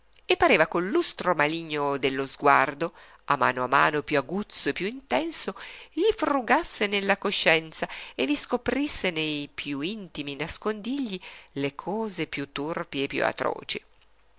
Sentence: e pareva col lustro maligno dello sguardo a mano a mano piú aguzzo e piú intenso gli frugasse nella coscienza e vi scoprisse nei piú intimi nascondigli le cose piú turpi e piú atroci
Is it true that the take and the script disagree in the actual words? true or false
false